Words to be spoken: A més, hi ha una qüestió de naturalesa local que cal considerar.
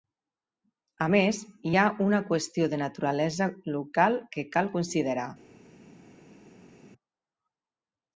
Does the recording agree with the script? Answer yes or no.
yes